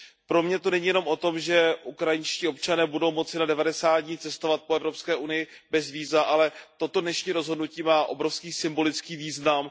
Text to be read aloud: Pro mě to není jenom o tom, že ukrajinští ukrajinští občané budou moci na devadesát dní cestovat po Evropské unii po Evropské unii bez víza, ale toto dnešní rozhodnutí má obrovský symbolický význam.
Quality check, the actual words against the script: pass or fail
fail